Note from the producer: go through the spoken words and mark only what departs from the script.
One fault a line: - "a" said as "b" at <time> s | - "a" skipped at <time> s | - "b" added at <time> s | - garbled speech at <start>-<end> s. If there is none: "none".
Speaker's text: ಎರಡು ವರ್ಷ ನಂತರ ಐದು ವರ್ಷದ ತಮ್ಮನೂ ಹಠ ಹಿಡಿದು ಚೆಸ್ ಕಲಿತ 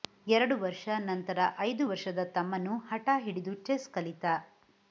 none